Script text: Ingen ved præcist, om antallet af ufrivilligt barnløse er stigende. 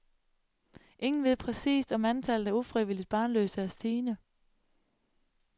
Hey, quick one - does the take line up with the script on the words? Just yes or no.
yes